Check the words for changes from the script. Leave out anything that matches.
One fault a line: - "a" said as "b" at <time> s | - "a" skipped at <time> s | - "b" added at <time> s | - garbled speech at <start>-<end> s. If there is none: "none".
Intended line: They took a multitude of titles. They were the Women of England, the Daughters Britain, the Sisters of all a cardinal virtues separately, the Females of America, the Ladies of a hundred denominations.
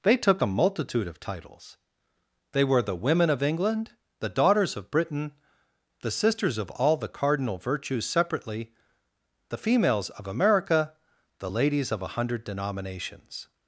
- "of" added at 4.8 s
- "a" said as "the" at 7.0 s